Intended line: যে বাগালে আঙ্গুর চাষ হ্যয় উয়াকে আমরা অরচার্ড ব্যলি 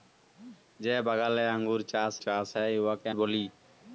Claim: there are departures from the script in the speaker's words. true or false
true